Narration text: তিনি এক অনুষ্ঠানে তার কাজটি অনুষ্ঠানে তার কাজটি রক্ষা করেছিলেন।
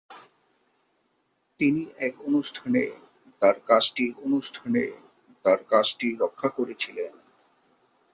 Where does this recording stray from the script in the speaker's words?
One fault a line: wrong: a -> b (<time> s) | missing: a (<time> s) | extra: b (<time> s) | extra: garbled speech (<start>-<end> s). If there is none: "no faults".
no faults